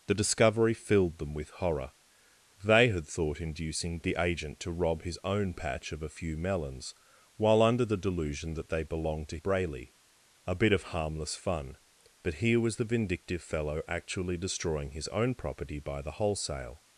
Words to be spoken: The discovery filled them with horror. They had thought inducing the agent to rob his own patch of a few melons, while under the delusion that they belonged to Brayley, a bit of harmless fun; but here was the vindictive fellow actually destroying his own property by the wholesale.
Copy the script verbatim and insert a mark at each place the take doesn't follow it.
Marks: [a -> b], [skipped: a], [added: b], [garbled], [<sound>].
The discovery filled them with horror. They had thought inducing the agent to rob his own patch of a few melons, while under the delusion that they belonged to Brayley, a bit of harmless fun; but here was the vindictive fellow actually destroying his own property by the wholesale.